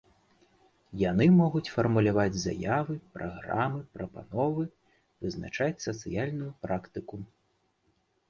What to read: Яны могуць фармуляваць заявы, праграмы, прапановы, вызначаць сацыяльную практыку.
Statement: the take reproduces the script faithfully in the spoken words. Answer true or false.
true